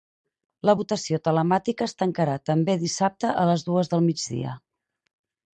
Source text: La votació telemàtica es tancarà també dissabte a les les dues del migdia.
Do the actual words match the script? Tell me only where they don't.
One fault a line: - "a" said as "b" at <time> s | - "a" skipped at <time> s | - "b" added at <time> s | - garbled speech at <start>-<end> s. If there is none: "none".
- "les" skipped at 3.7 s